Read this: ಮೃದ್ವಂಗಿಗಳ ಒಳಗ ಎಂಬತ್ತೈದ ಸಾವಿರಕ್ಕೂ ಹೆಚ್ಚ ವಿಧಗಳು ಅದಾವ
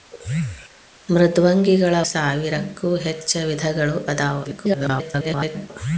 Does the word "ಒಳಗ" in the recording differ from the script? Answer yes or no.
yes